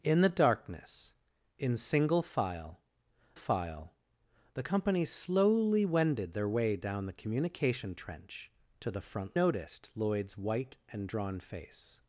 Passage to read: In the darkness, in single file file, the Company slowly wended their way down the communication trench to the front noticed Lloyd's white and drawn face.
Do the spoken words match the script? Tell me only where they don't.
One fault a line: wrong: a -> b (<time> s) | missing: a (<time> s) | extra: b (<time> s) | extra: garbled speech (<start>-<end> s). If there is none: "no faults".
no faults